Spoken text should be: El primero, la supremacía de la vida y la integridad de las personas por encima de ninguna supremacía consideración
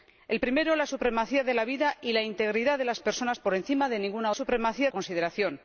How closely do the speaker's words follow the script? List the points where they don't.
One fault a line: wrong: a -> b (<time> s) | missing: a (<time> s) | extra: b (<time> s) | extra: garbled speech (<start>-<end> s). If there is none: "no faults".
no faults